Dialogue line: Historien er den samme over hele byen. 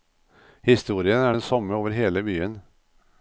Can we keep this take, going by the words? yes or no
yes